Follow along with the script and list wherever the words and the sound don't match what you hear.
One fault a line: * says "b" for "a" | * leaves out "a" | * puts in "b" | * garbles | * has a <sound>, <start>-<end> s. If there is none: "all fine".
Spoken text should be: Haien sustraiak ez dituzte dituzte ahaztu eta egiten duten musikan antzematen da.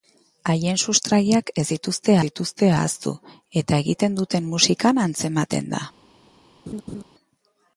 * has a laugh, 6.7-7.0 s